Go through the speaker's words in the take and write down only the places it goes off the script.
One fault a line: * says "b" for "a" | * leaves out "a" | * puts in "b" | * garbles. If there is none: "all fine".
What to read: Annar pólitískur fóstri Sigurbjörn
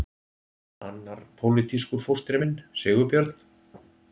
* puts in "minn"